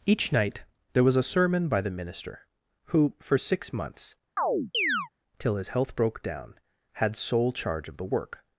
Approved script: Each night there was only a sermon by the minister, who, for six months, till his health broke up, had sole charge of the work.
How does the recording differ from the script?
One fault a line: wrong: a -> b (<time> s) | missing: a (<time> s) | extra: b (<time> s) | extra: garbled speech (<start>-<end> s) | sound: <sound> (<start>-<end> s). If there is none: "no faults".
missing: only (1.1 s)
sound: chirp (4.4-5.1 s)
wrong: up -> down (6.2 s)